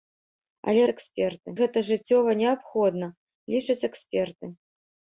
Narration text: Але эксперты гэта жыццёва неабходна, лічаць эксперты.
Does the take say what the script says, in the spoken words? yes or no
yes